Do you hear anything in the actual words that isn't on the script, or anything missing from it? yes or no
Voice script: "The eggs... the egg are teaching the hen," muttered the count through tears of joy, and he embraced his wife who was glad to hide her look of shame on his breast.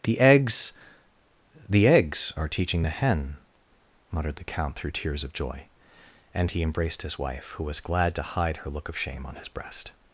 yes